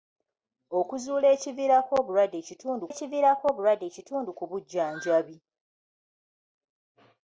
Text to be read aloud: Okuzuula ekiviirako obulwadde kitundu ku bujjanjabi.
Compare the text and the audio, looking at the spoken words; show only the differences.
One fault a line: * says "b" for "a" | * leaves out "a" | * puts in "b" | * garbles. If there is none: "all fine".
* puts in "ekiviirako obulwadde kitundu"